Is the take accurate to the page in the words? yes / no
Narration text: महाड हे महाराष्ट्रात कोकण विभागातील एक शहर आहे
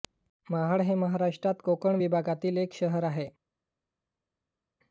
yes